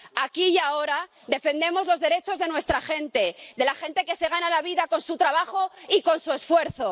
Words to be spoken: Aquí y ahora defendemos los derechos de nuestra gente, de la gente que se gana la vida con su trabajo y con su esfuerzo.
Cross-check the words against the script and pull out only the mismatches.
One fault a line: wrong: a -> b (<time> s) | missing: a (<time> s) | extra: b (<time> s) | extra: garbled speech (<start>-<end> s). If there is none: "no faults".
no faults